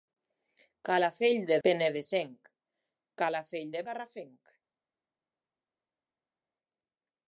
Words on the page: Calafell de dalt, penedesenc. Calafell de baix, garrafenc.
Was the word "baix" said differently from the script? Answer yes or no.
yes